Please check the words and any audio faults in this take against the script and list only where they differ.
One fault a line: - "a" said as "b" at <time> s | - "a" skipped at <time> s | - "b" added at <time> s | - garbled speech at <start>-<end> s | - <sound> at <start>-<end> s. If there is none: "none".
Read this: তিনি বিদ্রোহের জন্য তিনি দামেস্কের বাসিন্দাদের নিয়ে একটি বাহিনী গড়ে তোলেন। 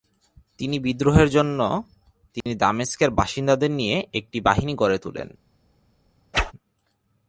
- dropout at 2.4-2.5 s
- whoosh at 6.3-6.5 s